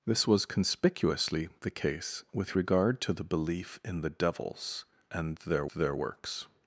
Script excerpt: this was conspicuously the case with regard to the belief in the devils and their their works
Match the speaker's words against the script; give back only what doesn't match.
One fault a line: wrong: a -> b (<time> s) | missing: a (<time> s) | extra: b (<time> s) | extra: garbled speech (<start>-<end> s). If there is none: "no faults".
no faults